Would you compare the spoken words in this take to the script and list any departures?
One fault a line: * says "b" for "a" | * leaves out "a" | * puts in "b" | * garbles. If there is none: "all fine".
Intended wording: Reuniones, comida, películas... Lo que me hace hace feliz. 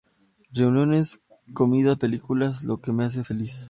* leaves out "hace"